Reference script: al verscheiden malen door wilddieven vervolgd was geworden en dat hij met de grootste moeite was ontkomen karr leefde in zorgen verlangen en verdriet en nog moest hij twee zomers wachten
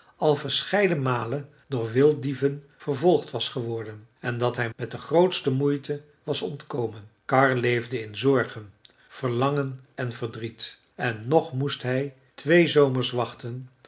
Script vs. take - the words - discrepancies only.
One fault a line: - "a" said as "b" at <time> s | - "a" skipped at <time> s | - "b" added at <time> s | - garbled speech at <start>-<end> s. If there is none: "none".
none